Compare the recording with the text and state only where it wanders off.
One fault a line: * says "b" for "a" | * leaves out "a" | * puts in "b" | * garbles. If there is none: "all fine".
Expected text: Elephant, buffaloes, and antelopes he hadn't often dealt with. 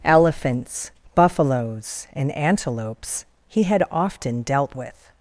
* says "Elephants" for "Elephant"
* says "had" for "hadn't"